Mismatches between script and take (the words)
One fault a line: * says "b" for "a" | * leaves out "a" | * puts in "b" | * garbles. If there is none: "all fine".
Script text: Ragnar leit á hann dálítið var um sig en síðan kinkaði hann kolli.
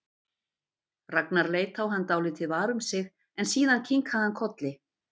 all fine